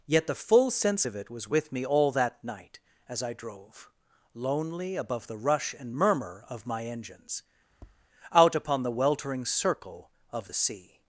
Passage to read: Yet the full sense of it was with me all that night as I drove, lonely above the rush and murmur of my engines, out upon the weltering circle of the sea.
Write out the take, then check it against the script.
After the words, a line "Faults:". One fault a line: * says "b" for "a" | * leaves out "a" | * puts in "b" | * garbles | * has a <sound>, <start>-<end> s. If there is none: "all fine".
Yet the full sense of it was with me all that night as I drove, lonely above the rush and murmur of my engines, out upon the weltering circle of the sea.
Faults:
* has a tap, 7.7-8.1 s